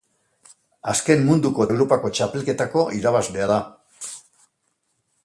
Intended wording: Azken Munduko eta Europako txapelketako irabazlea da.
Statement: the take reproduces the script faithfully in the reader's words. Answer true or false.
false